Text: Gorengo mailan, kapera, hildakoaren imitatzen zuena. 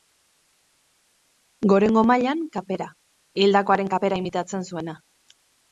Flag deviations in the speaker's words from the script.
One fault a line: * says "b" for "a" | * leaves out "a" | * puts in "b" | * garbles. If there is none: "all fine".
* puts in "kapera"